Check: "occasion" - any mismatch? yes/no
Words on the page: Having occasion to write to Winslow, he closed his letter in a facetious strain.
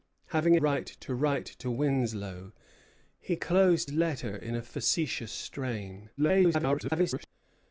yes